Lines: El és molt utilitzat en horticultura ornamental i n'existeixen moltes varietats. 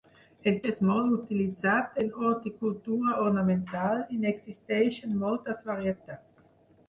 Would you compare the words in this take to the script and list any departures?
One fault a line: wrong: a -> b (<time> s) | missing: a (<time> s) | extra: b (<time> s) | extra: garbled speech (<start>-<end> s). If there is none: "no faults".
no faults